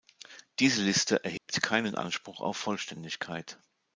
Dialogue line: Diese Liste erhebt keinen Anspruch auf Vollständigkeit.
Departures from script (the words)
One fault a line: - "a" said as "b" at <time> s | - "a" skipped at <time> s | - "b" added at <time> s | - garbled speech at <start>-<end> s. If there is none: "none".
none